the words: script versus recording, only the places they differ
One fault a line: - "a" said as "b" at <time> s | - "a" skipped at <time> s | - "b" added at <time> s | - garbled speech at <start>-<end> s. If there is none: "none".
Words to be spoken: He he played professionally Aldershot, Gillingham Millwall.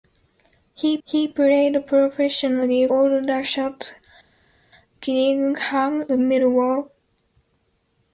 none